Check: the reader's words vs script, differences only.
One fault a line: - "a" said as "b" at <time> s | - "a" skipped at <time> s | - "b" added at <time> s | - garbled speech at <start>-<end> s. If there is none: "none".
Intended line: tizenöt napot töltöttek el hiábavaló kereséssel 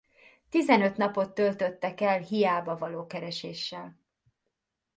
none